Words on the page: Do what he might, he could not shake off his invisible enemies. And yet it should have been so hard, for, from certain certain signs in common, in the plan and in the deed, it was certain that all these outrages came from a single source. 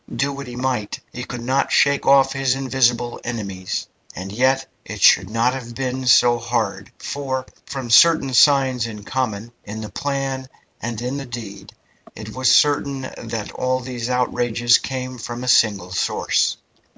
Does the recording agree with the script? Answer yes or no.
no